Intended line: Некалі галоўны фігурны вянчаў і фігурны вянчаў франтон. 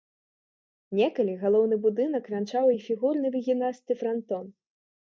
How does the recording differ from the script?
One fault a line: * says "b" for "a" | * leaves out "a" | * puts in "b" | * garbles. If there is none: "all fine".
* says "будынак" for "фігурны"
* says "выгінасты" for "вянчаў"